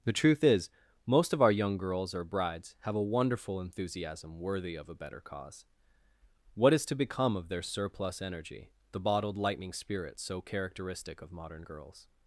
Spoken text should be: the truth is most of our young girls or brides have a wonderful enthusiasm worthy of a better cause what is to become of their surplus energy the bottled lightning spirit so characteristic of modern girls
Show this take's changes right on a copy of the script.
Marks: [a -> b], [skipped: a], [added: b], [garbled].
the truth is most of our young girls or brides have a wonderful enthusiasm worthy of a better cause what is to become of their surplus energy the bottled lightning spirit so characteristic of modern girls